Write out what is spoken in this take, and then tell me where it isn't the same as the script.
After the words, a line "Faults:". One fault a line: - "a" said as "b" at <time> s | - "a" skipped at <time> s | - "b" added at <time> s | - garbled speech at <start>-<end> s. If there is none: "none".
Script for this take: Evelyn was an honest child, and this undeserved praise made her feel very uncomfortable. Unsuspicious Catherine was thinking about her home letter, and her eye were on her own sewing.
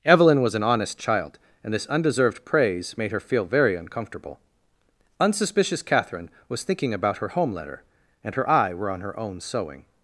Evelyn was an honest child, and this undeserved praise made her feel very uncomfortable. Unsuspicious Catherine was thinking about her home letter, and her eye were on her own sewing.
Faults:
none